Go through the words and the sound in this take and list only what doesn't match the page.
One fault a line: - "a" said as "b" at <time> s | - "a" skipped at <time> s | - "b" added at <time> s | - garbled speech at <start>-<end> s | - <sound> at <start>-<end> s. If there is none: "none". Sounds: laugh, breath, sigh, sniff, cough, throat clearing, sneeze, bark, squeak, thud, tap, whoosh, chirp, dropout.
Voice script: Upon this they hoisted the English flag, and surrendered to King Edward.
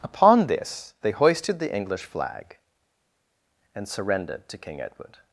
none